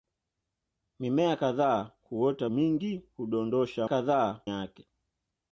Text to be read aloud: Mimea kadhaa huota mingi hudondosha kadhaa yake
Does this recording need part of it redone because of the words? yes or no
no